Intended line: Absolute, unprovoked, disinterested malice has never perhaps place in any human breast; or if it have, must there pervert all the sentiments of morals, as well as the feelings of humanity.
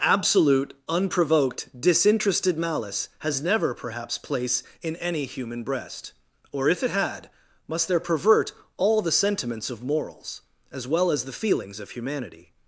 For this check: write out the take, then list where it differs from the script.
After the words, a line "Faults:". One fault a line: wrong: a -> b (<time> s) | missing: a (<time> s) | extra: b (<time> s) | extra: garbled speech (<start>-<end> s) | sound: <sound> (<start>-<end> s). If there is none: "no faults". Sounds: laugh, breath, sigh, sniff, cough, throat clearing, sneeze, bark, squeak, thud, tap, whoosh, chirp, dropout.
Absolute, unprovoked, disinterested malice has never perhaps place in any human breast; or if it had, must there pervert all the sentiments of morals, as well as the feelings of humanity.
Faults:
wrong: have -> had (6.9 s)